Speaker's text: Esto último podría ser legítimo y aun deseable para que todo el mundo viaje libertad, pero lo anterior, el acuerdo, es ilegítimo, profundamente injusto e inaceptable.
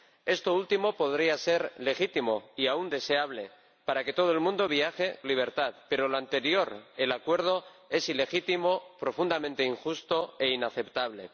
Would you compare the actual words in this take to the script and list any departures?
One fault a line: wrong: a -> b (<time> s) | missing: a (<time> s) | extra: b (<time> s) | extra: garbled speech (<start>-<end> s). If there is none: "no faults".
no faults